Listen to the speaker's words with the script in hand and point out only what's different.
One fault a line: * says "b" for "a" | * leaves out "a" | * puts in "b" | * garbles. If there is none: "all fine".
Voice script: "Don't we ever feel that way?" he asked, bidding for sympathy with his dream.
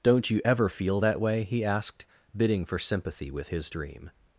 * says "you" for "we"